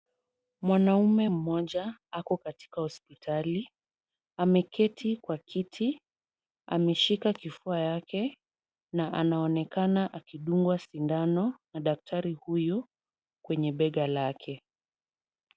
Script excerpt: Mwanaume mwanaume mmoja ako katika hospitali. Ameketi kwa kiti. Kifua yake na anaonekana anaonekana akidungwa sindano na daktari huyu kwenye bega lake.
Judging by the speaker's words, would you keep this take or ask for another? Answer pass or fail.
fail